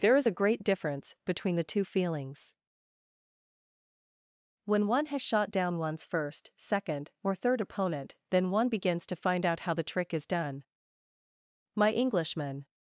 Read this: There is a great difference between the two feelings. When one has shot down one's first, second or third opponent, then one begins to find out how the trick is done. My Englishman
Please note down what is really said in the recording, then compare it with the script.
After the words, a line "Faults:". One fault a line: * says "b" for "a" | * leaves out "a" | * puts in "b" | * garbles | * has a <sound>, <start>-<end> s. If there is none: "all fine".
There is a great difference between the two feelings. When one has shot down one's first, second or third opponent, then one begins to find out how the trick is done. My Englishman
Faults:
all fine